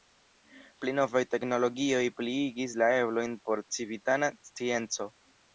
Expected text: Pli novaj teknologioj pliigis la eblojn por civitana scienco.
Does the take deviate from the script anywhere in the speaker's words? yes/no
no